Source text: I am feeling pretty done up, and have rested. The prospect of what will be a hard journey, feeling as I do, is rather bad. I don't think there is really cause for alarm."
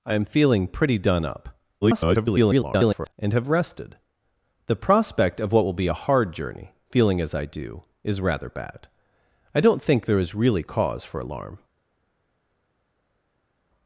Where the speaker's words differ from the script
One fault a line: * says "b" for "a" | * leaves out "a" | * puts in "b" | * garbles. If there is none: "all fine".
* garbles